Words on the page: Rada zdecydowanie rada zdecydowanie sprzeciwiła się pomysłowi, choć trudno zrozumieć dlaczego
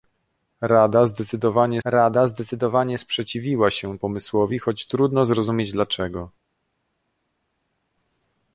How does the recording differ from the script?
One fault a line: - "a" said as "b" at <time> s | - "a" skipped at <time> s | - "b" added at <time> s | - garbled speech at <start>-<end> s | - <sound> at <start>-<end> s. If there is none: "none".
none